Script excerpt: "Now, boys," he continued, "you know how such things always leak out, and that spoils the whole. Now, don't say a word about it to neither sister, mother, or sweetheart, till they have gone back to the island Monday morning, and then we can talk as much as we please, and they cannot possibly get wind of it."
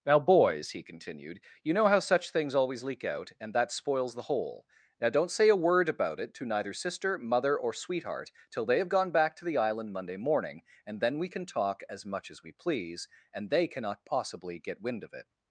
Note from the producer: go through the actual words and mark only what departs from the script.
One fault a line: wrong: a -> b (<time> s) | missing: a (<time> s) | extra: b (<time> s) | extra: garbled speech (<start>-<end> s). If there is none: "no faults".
no faults